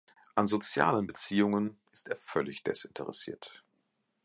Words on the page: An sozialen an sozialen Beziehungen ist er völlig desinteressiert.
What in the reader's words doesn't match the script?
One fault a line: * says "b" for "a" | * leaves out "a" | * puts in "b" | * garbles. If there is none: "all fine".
* leaves out "an sozialen"